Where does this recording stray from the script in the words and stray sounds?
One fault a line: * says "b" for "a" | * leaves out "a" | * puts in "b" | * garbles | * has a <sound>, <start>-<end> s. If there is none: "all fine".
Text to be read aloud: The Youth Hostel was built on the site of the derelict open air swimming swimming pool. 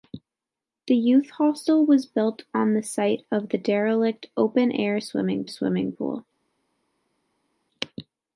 all fine